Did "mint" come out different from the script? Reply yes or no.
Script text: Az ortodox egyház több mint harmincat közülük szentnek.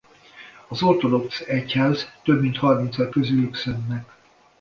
no